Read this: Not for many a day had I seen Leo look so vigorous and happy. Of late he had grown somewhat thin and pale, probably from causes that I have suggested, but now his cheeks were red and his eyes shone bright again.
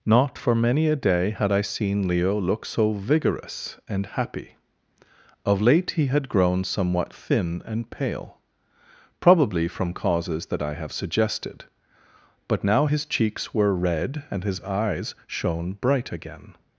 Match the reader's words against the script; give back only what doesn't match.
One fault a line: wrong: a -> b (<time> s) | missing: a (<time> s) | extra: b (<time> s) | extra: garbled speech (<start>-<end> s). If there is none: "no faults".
no faults